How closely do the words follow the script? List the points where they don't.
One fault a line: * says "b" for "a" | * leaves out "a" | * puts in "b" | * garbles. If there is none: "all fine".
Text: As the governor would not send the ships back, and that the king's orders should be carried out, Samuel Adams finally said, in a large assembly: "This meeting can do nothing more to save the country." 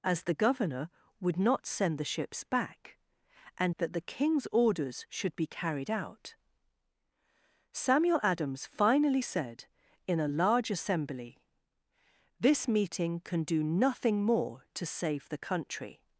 all fine